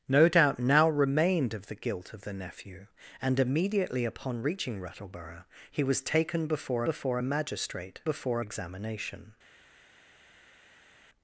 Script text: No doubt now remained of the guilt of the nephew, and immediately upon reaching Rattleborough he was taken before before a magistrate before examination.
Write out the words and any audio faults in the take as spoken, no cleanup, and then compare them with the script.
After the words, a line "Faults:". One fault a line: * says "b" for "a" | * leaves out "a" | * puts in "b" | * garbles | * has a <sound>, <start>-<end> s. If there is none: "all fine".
No doubt now remained of the guilt of the nephew, and immediately upon reaching Rattleborough he was taken before before a magistrate before examination.
Faults:
all fine